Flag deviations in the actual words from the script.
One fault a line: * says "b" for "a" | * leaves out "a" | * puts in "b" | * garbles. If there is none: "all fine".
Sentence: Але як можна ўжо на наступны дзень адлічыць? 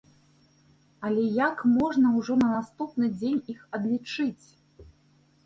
* puts in "іх"